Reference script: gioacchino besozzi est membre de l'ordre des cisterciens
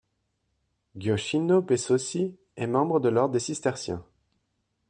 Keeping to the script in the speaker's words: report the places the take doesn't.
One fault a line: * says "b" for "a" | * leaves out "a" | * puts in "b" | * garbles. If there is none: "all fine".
all fine